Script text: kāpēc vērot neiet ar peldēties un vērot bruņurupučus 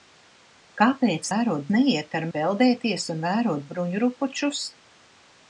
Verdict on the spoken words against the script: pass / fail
pass